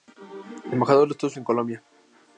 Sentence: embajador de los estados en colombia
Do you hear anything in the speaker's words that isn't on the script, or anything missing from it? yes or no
no